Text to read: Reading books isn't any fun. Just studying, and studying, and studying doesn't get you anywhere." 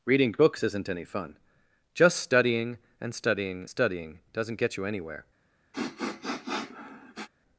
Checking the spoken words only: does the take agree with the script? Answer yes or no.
no